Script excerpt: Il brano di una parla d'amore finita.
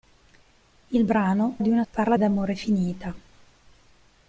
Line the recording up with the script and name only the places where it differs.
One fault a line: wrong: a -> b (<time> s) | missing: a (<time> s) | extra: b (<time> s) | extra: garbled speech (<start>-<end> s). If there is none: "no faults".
no faults